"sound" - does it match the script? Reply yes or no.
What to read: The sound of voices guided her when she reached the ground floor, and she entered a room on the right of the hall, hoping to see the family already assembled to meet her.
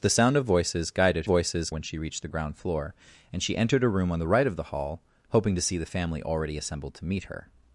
yes